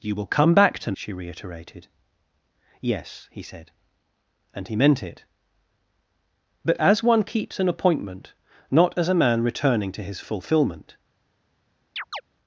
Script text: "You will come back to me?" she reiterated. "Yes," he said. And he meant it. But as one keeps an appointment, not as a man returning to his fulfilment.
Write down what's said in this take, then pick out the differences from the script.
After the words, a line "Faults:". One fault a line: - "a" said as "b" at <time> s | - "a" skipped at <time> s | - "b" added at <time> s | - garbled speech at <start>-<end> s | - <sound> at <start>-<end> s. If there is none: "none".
"You will come back to?" she reiterated. "Yes," he said. And he meant it. But as one keeps an appointment, not as a man returning to his fulfilment.
Faults:
- "me" skipped at 0.9 s
- chirp at 12.0-12.2 s